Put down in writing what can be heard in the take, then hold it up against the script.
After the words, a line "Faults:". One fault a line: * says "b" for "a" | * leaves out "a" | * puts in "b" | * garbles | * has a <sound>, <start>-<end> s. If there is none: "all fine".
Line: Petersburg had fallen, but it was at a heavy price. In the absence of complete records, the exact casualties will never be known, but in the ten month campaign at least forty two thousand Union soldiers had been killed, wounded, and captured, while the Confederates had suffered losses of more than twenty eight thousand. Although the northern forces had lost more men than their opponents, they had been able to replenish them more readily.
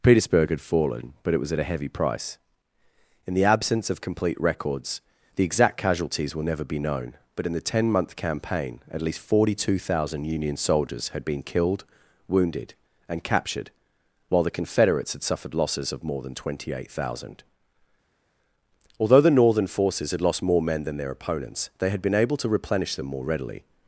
Petersburg had fallen, but it was at a heavy price. In the absence of complete records, the exact casualties will never be known, but in the ten month campaign at least forty two thousand Union soldiers had been killed, wounded, and captured, while the Confederates had suffered losses of more than twenty eight thousand. Although the northern forces had lost more men than their opponents, they had been able to replenish them more readily.
Faults:
all fine